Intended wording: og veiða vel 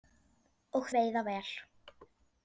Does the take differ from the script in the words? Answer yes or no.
no